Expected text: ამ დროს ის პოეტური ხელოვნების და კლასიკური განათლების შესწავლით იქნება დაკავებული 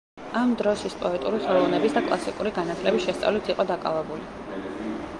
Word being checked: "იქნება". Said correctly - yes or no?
no